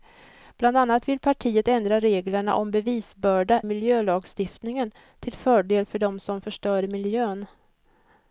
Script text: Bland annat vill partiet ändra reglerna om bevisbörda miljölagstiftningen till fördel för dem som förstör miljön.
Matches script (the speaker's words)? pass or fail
pass